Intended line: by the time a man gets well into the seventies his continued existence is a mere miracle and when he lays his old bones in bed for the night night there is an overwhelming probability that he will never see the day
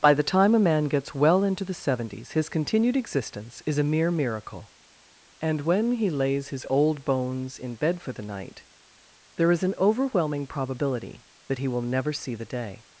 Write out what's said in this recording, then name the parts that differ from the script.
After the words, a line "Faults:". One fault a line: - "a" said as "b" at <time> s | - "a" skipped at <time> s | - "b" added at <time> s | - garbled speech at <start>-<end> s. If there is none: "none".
by the time a man gets well into the seventies his continued existence is a mere miracle and when he lays his old bones in bed for the night there is an overwhelming probability that he will never see the day
Faults:
- "night" skipped at 8.7 s